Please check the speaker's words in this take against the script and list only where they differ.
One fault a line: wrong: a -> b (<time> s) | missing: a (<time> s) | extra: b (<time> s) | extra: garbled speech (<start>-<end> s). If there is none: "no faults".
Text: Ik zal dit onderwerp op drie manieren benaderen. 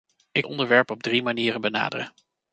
missing: zal dit (0.5 s)